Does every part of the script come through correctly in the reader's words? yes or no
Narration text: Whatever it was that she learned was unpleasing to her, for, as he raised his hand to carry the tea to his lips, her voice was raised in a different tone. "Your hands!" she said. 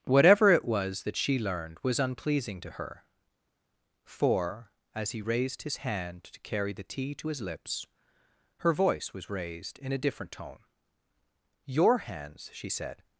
yes